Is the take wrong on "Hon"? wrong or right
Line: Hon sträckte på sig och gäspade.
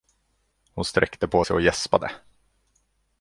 right